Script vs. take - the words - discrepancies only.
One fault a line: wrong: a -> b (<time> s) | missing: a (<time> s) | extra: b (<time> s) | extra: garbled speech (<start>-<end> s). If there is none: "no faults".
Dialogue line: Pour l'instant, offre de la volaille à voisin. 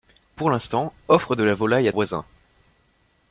no faults